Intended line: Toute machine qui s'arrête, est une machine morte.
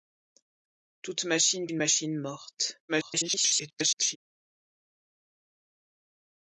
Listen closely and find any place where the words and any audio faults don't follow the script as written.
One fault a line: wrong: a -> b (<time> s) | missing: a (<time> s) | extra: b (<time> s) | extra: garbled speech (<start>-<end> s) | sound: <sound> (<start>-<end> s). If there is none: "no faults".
missing: qui s'arrête est (1.7 s)
extra: garbled speech (2.9-4.2 s)